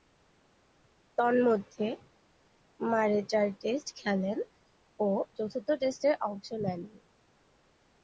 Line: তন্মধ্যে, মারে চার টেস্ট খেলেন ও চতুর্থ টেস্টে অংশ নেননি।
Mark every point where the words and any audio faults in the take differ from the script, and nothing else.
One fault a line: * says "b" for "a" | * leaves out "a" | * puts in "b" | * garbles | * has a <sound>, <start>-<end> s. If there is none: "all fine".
all fine